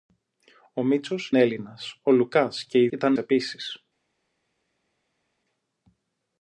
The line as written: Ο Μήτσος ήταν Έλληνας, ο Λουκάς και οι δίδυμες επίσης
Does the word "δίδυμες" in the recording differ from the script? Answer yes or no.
yes